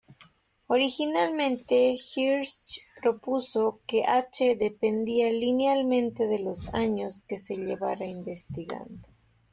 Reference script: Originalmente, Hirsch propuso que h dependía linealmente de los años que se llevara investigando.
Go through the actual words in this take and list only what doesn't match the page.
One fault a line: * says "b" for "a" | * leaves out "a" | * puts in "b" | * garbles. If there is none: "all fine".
all fine